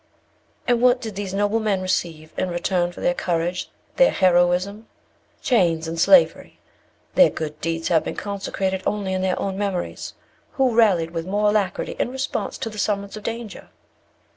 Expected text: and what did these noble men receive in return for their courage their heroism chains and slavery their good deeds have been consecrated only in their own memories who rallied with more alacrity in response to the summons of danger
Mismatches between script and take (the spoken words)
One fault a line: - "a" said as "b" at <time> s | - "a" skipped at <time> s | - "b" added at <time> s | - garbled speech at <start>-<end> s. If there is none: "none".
none